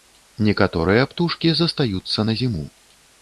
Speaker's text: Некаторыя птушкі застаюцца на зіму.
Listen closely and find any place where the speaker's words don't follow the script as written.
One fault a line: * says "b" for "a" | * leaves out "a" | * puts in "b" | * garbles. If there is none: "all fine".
all fine